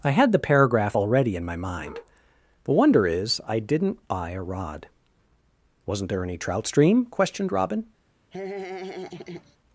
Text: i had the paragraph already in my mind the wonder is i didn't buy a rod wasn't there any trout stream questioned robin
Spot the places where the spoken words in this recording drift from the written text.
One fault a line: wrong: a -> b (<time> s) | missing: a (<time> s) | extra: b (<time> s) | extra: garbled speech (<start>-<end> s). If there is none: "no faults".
no faults